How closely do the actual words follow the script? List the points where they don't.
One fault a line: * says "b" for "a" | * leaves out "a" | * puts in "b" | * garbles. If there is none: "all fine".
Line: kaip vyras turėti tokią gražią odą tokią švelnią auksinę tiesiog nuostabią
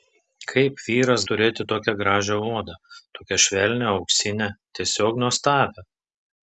all fine